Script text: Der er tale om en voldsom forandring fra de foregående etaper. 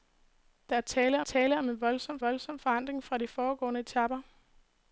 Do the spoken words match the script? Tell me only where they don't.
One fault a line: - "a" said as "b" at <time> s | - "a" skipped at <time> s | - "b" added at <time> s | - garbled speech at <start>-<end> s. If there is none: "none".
- "tale" added at 1.2 s
- "voldsom" added at 2.2 s